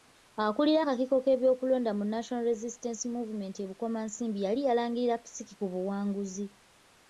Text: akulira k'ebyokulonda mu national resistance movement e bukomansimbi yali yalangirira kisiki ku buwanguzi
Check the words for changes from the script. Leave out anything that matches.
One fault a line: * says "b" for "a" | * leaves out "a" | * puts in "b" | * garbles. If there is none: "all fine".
* puts in "akakiiko"